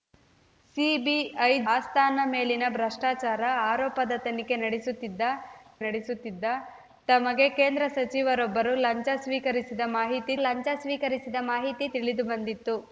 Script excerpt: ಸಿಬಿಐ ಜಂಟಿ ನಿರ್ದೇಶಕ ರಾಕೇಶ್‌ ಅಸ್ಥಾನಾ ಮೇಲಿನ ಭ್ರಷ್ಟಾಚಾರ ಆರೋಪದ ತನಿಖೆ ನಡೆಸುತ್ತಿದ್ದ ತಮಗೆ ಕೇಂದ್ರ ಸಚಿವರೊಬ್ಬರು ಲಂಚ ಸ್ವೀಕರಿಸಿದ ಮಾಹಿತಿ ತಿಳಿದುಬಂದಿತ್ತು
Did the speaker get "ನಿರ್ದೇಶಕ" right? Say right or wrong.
wrong